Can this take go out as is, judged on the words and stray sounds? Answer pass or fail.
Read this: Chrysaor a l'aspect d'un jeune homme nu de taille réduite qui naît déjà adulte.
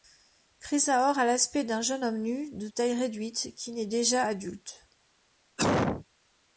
fail